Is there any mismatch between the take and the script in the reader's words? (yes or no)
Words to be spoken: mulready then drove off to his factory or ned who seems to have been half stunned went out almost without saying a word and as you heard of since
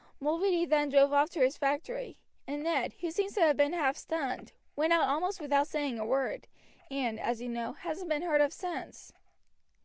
yes